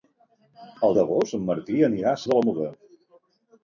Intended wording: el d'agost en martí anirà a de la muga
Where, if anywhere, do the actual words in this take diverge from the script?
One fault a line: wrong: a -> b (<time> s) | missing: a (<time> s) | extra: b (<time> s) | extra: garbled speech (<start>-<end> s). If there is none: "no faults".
no faults